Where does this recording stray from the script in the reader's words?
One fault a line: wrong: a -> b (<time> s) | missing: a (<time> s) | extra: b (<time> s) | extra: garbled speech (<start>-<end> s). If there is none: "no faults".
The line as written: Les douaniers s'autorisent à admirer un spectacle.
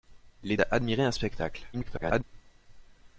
missing: douaniers s'autorisent (0.6 s)
extra: garbled speech (1.7-2.2 s)